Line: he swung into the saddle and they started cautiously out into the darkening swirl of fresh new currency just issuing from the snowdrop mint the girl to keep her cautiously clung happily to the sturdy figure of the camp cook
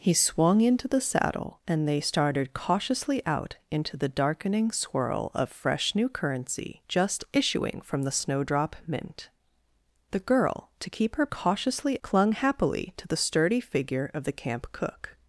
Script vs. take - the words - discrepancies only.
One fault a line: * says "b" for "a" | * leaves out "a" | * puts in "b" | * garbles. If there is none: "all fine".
all fine